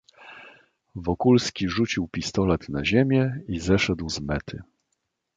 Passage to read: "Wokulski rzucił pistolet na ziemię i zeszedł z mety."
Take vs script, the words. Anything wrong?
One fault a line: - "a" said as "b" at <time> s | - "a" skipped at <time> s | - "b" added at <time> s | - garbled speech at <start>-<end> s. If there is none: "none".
none